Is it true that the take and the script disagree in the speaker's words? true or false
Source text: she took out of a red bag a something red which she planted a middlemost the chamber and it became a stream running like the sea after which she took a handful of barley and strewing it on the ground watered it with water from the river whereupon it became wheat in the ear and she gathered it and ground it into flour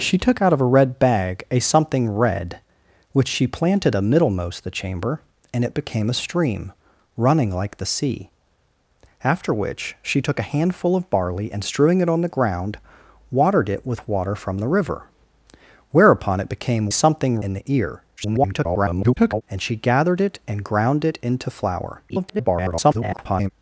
true